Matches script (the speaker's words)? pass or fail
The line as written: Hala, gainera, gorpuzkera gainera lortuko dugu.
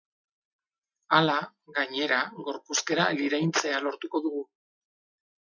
fail